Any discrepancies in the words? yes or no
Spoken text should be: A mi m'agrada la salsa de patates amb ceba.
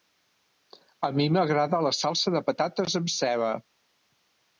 no